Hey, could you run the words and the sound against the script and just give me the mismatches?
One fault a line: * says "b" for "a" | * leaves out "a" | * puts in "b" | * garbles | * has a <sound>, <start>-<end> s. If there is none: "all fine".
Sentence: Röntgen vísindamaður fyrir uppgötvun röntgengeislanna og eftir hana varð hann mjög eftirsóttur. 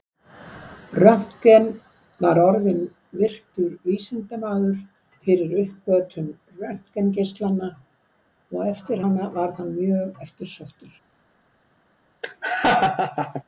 * puts in "var orðinn virtur"
* has a laugh, 12.2-13.4 s